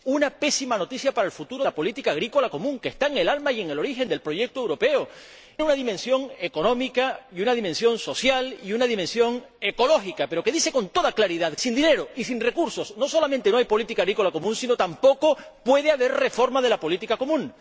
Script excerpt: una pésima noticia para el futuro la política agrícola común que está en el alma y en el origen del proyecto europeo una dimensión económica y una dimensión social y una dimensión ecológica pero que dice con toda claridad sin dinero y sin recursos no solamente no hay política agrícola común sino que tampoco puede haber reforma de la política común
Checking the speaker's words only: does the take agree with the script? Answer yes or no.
yes